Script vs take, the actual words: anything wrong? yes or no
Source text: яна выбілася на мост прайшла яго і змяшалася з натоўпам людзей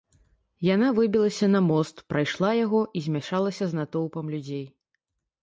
no